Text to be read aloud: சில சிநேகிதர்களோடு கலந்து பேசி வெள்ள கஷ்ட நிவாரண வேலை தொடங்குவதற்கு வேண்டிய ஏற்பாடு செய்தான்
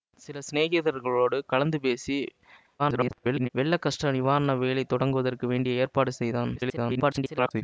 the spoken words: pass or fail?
fail